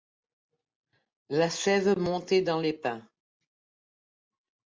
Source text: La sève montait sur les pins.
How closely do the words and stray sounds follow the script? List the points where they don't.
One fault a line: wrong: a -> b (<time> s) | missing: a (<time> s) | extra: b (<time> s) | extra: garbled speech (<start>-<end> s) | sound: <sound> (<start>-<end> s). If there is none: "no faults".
wrong: sur -> dans (2.4 s)